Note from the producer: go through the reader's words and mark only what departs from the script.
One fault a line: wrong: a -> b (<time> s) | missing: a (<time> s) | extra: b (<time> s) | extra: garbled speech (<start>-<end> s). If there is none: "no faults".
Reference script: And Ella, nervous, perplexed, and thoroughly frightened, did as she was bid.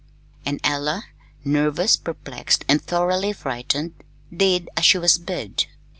no faults